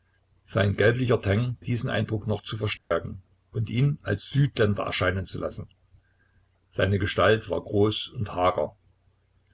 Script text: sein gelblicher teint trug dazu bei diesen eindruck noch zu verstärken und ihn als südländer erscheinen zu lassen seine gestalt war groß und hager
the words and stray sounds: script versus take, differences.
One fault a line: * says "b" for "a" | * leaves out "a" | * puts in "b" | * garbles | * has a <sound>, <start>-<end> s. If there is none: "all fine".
* leaves out "trug dazu bei"
* has a dropout, 2.8-2.9 s